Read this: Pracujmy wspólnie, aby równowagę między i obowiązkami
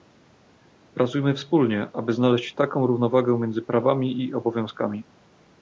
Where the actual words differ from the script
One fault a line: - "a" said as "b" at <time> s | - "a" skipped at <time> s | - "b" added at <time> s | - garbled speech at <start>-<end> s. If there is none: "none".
- "znaleźć taką" added at 2.1 s
- "prawami" added at 3.6 s